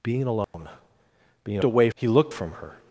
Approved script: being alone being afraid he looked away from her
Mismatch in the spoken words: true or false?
true